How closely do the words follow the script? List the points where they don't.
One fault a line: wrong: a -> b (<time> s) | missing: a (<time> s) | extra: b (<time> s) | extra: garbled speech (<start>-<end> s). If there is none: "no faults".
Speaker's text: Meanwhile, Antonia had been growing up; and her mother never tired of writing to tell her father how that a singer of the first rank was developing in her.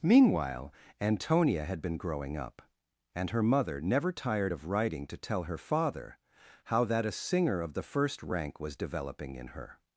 no faults